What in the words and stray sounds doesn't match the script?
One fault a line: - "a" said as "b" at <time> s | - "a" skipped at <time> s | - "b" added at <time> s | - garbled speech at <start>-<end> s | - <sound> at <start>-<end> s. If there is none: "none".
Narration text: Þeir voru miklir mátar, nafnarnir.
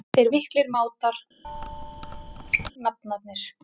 - "voru" skipped at 0.3 s
- squeak at 1.4-2.7 s